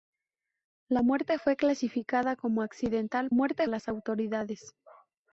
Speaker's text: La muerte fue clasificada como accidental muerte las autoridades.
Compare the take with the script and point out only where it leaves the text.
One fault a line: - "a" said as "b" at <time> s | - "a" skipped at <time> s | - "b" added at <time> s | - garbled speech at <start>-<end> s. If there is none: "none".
none